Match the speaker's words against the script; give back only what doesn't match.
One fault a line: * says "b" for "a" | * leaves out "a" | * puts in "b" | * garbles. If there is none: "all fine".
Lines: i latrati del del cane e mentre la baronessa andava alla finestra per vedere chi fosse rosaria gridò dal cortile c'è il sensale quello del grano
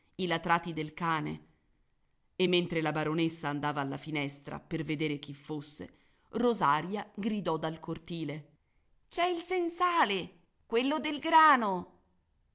* leaves out "del"